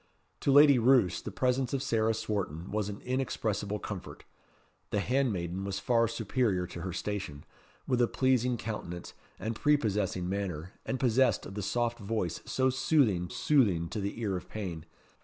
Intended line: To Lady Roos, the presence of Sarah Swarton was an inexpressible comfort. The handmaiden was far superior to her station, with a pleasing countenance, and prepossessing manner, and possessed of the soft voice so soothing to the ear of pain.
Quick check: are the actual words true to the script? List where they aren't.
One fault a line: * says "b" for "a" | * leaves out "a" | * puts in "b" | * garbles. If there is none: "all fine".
* puts in "soothing"